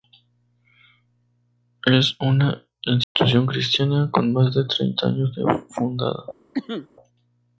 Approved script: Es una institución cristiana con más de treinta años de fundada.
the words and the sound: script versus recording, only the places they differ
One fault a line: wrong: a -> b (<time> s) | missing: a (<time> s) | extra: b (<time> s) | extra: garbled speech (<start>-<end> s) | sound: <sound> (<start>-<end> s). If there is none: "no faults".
sound: dropout (3.0-3.2 s)
sound: cough (6.5-6.9 s)